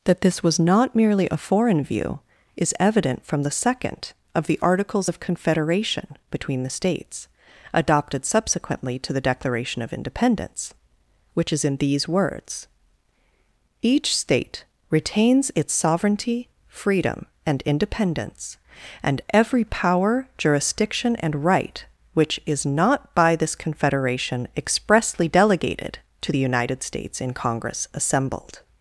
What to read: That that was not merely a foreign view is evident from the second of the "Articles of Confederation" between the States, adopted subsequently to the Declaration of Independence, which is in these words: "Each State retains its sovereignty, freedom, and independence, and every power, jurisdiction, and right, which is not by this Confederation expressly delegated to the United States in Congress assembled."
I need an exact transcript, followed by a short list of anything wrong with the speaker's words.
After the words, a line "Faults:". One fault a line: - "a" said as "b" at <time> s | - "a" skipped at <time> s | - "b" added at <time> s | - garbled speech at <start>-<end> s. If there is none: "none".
That this was not merely a foreign view is evident from the second of the "Articles of Confederation" between the States, adopted subsequently to the Declaration of Independence, which is in these words: "Each State retains its sovereignty, freedom, and independence, and every power, jurisdiction, and right, which is not by this Confederation expressly delegated to the United States in Congress assembled."
Faults:
- "that" said as "this" at 0.2 s